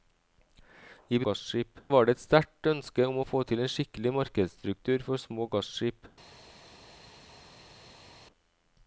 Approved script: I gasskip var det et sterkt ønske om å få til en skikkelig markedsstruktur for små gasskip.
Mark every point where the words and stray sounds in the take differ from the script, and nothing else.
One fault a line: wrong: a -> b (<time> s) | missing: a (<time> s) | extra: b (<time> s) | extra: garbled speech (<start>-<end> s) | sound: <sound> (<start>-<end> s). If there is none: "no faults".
no faults